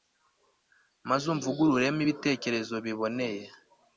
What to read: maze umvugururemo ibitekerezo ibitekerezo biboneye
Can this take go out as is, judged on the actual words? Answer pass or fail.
fail